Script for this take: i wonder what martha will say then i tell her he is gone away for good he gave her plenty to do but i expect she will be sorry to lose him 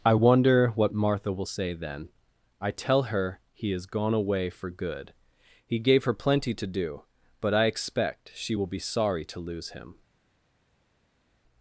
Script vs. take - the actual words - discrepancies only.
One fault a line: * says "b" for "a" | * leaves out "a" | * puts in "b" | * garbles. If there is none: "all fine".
all fine